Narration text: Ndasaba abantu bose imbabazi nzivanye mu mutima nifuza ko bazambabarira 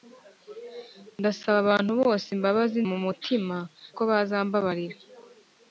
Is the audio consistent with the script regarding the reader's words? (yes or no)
no